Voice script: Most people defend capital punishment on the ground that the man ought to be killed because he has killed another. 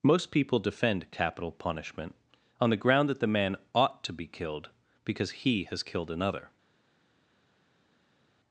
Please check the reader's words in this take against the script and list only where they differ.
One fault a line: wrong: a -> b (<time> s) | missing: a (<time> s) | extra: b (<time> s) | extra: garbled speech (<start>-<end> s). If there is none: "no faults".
no faults